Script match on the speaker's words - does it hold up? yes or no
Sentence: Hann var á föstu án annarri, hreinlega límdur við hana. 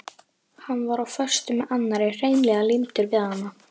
no